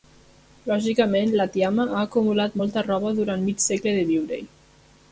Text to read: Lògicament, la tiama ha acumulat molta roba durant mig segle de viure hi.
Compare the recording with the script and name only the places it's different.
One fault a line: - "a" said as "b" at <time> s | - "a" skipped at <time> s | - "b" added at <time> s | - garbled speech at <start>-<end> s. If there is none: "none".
none